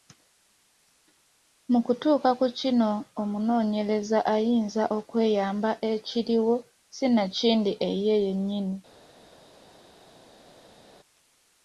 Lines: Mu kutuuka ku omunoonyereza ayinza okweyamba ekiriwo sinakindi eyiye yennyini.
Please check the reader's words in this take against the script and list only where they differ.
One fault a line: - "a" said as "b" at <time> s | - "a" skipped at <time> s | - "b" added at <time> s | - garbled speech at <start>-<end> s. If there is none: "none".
- "kino" added at 2.6 s